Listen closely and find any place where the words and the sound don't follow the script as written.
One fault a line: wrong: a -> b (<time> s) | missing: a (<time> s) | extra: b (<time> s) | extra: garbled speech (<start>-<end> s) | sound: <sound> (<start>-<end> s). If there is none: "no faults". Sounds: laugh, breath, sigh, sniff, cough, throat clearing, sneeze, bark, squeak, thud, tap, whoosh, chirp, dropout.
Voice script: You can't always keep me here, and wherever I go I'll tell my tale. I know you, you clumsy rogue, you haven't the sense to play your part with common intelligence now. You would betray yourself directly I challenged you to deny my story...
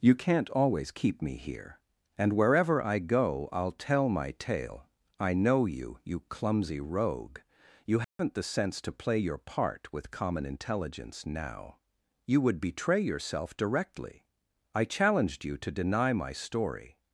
sound: dropout (8.0-8.2 s)